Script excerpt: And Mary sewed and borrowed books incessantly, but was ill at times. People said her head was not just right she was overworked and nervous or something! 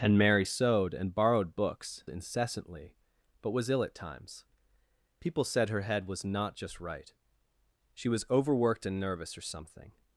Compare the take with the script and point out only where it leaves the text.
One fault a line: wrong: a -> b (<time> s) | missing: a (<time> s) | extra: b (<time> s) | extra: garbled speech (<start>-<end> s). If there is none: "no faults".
no faults